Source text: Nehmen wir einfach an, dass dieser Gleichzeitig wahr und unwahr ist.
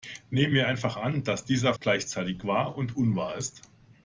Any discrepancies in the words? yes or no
no